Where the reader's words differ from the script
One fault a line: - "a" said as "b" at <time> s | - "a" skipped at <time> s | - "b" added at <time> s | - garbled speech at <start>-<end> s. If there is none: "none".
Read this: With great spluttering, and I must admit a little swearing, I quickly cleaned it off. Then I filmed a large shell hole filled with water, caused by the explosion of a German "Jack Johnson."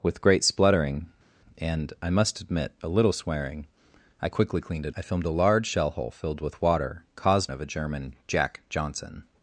- "off Then" skipped at 4.9 s
- "by the explosion" skipped at 7.5 s